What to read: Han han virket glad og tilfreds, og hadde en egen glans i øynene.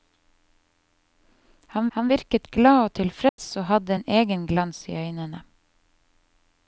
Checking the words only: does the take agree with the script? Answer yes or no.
yes